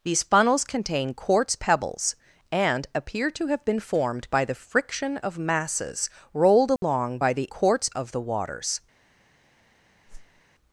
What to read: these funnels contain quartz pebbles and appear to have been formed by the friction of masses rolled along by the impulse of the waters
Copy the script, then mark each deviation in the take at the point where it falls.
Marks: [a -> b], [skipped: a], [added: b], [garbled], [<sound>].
these funnels contain quartz pebbles and appear to have been formed by the friction of masses rolled along [dropout] by the [impulse -> quartz] of the waters [whoosh]